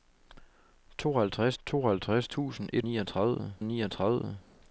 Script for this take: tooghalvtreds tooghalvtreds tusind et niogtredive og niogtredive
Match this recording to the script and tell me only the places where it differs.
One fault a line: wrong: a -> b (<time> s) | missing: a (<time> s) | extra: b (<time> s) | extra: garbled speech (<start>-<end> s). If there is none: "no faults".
no faults